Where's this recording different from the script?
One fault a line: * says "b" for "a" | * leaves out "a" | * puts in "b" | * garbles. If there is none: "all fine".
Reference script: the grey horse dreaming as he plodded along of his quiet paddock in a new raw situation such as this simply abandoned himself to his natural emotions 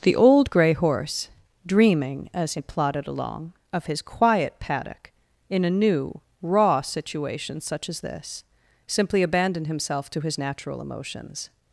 * puts in "old"